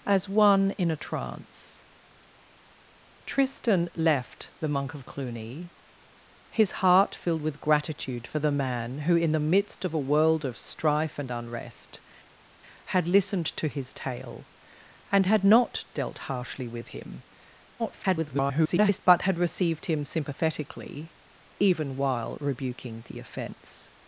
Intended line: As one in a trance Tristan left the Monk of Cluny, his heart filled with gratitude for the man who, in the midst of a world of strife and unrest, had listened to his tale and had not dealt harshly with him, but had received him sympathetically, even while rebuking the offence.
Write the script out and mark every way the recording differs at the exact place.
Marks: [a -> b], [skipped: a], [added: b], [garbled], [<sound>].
As one in a trance Tristan left the Monk of Cluny, his heart filled with gratitude for the man who, in the midst of a world of strife and unrest, had listened to his tale and had not dealt harshly with him, [garbled] but had received him sympathetically, even while rebuking the offence.